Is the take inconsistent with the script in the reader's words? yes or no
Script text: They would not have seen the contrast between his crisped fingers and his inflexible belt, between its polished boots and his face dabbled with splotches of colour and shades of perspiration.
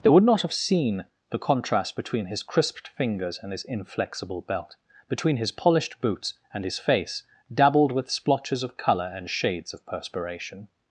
yes